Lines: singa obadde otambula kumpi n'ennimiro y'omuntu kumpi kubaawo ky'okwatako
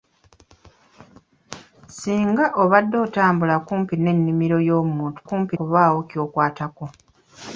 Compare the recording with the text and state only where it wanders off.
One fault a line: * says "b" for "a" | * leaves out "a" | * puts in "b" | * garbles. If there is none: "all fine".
all fine